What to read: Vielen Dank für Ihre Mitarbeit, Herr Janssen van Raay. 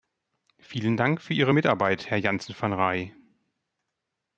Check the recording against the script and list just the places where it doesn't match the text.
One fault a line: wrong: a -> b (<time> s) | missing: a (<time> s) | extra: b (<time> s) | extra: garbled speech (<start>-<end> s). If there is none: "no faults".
no faults